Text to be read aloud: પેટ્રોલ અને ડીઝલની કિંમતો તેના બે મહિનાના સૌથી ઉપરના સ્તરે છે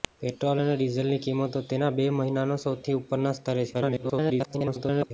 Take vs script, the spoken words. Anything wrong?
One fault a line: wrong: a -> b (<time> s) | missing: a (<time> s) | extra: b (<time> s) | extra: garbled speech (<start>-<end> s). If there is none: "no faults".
extra: garbled speech (3.7-5.1 s)